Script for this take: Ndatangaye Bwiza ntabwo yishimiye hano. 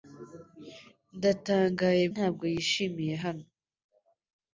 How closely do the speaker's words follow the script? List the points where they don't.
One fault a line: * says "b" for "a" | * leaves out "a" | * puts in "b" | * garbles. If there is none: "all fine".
* leaves out "Bwiza"